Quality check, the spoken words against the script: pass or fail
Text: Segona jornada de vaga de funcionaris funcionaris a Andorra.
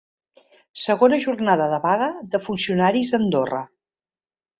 fail